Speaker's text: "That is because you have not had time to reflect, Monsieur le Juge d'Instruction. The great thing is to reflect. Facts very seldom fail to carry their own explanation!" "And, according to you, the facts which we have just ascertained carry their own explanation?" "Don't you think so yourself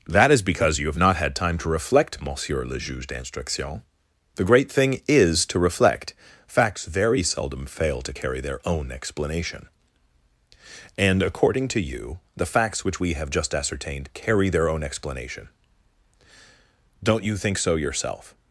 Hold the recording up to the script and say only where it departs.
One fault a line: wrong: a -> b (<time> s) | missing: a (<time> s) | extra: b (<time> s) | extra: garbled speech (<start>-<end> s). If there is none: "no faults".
no faults